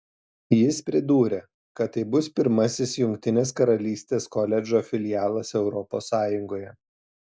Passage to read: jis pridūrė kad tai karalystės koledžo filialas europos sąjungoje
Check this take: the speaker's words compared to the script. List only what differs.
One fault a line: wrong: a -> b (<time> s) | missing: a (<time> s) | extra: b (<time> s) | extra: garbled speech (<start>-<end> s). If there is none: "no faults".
extra: bus pirmasis jungtinės (2.1 s)